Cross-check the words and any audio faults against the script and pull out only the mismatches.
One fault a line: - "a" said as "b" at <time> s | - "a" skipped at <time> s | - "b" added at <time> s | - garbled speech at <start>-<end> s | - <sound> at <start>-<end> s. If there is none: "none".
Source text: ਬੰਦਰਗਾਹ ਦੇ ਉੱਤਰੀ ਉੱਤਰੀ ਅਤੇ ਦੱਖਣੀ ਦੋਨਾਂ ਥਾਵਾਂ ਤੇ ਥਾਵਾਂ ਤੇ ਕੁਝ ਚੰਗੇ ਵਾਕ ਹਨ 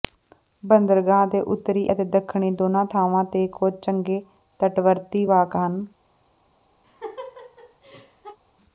- "ਉੱਤਰੀ" skipped at 1.9 s
- "ਥਾਵਾਂ ਤੇ" skipped at 3.5 s
- "ਤਟਵਰਤੀ" added at 4.6 s
- laugh at 6.8-8.4 s